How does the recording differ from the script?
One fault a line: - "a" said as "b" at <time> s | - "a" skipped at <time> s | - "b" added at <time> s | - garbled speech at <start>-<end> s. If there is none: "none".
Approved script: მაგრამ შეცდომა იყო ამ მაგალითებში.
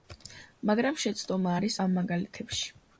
- "იყო" said as "არის" at 1.6 s